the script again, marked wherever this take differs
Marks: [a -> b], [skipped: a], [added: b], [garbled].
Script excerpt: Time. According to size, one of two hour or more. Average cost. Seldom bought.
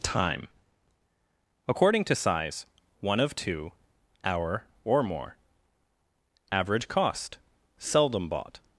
Time. According to size, one of two hour or more. Average cost. Seldom bought.